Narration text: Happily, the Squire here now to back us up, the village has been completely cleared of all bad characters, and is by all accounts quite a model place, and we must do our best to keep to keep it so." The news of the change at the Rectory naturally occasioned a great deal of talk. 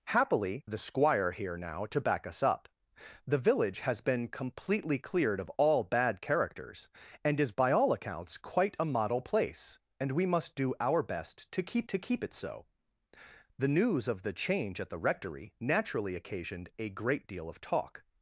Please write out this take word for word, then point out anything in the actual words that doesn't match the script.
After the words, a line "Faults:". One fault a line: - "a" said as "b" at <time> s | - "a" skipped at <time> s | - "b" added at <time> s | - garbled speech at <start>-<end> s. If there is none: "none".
Happily, the Squire here now to back us up, the village has been completely cleared of all bad characters, and is by all accounts quite a model place, and we must do our best to keep to keep it so." The news of the change at the Rectory naturally occasioned a great deal of talk.
Faults:
none